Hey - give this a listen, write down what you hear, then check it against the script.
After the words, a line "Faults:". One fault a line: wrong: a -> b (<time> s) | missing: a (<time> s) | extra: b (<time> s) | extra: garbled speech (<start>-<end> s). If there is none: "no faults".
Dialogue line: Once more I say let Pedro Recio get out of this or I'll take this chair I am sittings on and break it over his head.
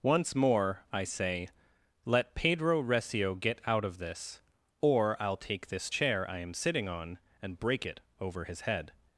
Once more I say let Pedro Recio get out of this or I'll take this chair I am sitting on and break it over his head.
Faults:
wrong: sittings -> sitting (6.5 s)